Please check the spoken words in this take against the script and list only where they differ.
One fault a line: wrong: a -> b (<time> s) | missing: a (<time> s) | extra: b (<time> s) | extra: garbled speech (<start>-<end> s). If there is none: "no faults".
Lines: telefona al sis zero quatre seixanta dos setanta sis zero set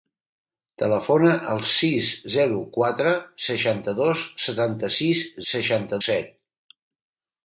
wrong: zero -> seixanta (5.5 s)